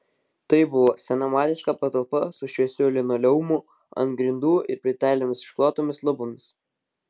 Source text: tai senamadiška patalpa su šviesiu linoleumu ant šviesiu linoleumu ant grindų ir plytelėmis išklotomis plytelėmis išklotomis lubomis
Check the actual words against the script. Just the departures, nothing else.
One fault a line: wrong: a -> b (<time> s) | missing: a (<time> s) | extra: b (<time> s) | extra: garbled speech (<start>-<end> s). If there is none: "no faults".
extra: buvo (0.7 s)
missing: šviesiu linoleumu ant (4.2 s)
missing: plytelėmis išklotomis (6.0 s)